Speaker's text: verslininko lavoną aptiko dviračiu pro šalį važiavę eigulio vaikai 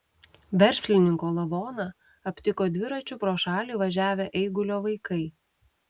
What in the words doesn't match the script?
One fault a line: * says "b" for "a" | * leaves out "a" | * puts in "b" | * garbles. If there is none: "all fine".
all fine